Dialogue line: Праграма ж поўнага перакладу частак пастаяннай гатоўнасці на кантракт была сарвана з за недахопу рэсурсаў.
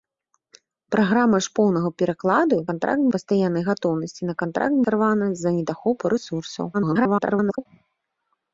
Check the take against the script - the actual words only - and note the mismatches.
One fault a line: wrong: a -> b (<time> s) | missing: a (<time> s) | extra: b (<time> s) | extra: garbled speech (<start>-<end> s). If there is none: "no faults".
wrong: частак -> кантракт (2.7 s)
missing: была (4.8 s)
extra: garbled speech (6.7-7.7 s)